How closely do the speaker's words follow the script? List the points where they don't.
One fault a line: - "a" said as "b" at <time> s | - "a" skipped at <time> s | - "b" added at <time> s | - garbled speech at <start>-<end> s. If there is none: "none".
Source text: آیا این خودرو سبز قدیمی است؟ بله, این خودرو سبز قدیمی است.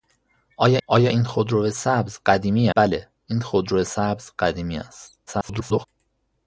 - "آیا" added at 0.9 s
- "است" skipped at 2.7 s
- garbled speech at 5.3-5.8 s